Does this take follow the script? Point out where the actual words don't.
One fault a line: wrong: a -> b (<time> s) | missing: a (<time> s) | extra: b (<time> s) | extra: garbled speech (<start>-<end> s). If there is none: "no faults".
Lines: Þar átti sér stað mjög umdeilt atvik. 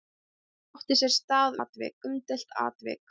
wrong: mjög -> atvik (1.6 s)